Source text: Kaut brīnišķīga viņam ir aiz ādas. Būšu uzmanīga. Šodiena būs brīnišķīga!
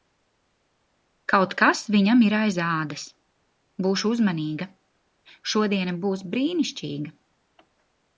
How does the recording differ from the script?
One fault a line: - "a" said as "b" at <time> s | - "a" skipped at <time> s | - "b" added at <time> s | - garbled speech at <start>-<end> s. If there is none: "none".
- "brīnišķīga" said as "kas" at 1.6 s